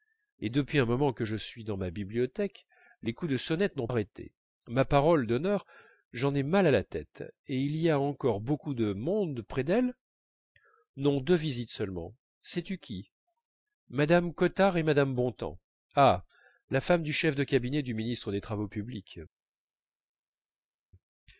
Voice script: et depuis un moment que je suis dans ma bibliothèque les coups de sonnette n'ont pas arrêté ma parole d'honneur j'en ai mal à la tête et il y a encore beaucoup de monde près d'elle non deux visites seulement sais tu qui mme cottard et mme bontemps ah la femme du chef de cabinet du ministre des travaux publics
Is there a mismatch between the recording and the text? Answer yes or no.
yes